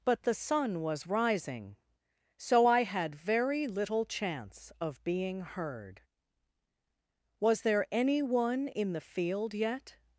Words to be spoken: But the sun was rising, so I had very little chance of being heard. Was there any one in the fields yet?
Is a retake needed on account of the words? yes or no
yes